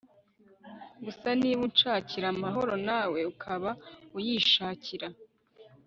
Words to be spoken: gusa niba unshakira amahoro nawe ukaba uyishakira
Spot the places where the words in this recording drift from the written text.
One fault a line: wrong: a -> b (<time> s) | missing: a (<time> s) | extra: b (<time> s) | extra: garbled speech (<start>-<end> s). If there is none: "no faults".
no faults